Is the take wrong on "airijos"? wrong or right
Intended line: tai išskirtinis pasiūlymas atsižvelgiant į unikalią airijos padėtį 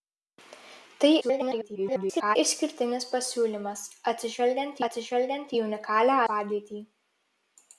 wrong